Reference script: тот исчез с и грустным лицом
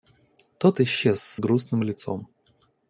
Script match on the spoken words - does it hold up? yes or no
yes